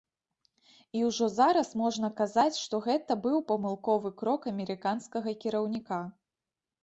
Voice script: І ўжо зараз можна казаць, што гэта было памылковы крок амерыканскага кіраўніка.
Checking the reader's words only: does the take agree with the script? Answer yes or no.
no